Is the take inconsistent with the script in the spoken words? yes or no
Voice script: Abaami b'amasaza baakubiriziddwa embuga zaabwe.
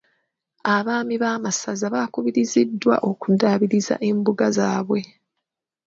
yes